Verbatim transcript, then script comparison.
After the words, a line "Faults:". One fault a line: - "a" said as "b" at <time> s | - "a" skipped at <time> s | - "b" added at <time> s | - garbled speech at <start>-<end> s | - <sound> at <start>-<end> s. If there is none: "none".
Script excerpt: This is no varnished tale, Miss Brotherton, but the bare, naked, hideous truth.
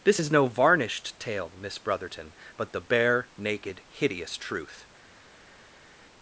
This is no varnished tale, Miss Brotherton, but the bare, naked, hideous truth.
Faults:
none